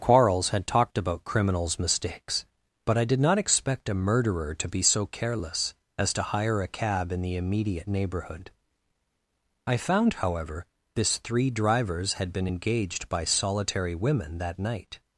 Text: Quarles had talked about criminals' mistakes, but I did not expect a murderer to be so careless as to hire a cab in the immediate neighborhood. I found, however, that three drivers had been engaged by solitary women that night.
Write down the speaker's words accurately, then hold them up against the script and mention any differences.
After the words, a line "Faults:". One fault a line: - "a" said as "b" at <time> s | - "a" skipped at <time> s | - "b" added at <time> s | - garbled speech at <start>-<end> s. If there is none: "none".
Quarles had talked about criminals' mistakes, but I did not expect a murderer to be so careless as to hire a cab in the immediate neighborhood. I found, however, this three drivers had been engaged by solitary women that night.
Faults:
- "that" said as "this" at 10.9 s